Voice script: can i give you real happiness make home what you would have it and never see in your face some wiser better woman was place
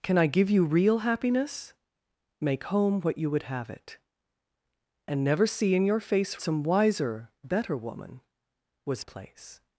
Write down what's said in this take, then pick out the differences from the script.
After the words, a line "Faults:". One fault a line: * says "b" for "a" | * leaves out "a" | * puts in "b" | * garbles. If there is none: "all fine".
can i give you real happiness make home what you would have it and never see in your face some wiser better woman was place
Faults:
all fine